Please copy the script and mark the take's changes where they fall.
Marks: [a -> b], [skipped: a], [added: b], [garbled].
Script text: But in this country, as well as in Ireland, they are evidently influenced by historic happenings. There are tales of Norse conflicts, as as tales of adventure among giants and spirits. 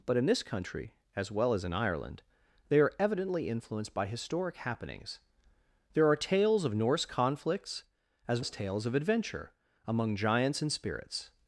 But in this country, as well as in Ireland, they are evidently influenced by historic happenings. There are tales of Norse conflicts, as as tales of adventure among giants and spirits.